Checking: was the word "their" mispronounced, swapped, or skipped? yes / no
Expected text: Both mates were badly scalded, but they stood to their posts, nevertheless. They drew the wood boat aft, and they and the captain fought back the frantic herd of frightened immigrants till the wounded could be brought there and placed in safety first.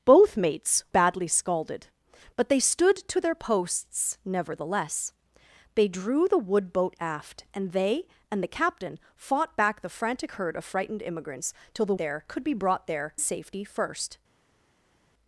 no